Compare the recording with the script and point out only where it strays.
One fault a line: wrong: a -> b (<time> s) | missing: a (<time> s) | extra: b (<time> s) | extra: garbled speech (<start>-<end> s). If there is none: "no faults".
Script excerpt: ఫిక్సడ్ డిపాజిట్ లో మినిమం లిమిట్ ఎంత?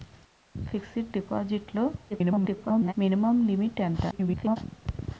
extra: garbled speech (2.1-2.9 s)
extra: garbled speech (4.1-4.6 s)